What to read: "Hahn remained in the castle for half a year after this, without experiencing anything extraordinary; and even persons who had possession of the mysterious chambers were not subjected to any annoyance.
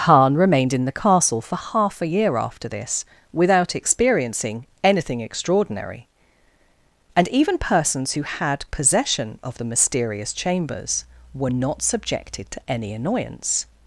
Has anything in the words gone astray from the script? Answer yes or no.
no